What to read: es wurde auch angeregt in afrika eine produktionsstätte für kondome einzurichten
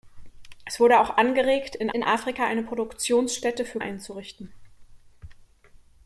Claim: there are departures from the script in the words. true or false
true